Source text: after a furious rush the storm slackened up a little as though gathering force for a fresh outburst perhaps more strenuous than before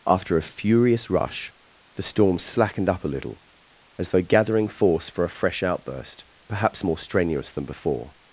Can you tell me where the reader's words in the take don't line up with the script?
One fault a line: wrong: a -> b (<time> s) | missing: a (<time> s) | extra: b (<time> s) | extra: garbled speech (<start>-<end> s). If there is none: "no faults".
no faults